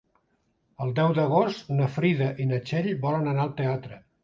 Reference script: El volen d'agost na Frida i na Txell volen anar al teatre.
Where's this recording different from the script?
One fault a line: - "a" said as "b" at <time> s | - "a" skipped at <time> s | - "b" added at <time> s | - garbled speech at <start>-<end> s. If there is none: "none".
- "volen" said as "deu" at 1.0 s